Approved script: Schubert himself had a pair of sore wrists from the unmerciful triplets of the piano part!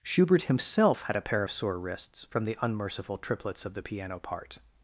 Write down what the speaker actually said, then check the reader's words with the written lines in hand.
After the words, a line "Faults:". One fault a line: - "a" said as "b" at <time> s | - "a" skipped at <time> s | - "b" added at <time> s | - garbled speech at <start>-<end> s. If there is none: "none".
Schubert himself had a pair of sore wrists from the unmerciful triplets of the piano part!
Faults:
none